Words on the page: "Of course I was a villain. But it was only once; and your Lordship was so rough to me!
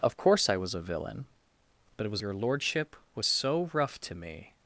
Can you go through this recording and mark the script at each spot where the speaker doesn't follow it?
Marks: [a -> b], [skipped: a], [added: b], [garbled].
"Of course I was a villain. But it was [skipped: only once; and] your Lordship was so rough to me!